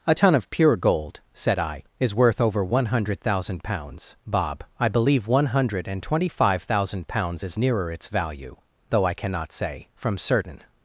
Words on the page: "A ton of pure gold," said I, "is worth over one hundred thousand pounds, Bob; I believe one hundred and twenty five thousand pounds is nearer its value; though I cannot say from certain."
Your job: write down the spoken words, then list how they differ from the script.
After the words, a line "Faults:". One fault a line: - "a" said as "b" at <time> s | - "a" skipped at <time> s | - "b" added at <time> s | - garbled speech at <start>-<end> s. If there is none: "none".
"A ton of pure gold," said I, "is worth over one hundred thousand pounds, Bob; I believe one hundred and twenty five thousand pounds is nearer its value; though I cannot say from certain."
Faults:
none